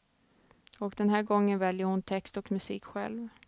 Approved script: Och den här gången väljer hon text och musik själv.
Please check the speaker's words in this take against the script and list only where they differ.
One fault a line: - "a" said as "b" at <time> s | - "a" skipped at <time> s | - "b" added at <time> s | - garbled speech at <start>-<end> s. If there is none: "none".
none